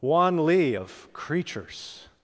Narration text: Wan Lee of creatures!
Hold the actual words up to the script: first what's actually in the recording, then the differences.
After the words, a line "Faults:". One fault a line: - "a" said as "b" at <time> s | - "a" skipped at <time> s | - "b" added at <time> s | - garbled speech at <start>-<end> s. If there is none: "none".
Wan Lee of creatures!
Faults:
none